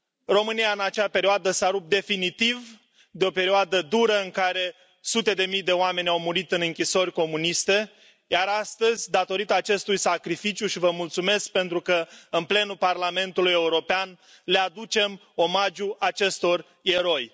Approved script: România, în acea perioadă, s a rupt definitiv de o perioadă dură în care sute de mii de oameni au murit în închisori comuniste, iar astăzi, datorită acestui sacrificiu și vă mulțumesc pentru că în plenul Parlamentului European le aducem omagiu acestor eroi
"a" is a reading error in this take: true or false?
false